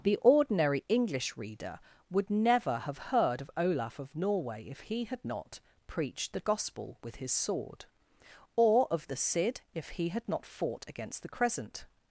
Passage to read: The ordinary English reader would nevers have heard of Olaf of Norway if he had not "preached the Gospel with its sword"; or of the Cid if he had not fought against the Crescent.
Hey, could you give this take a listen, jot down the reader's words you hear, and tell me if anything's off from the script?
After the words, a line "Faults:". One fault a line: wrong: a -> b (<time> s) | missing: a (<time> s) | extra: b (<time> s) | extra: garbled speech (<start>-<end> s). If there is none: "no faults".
The ordinary English reader would never have heard of Olaf of Norway if he had not "preached the Gospel with his sword"; or of the Cid if he had not fought against the Crescent.
Faults:
wrong: nevers -> never (2.3 s)
wrong: its -> his (7.2 s)